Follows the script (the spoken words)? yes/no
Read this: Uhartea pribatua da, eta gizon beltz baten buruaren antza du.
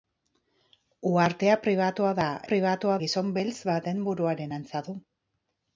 no